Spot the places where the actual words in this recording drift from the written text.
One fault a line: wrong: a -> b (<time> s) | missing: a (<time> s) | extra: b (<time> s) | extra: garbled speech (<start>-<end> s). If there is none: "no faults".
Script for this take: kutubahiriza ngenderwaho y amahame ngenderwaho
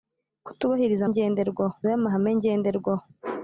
no faults